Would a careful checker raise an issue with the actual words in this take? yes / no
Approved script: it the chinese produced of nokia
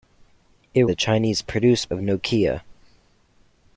no